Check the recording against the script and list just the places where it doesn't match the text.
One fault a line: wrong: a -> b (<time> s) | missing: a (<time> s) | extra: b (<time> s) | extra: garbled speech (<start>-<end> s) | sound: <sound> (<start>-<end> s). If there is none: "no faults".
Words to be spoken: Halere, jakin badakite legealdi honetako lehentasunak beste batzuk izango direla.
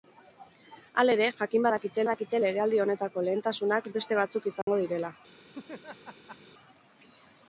extra: badakite (2.0 s)
sound: dropout (4.6-4.7 s)
sound: laugh (5.5-6.4 s)